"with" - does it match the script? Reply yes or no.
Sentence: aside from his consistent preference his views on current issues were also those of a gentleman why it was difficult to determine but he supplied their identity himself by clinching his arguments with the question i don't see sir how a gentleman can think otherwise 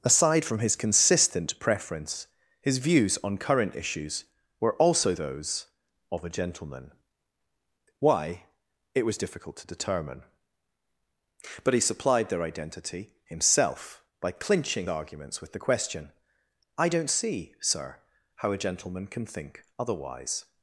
yes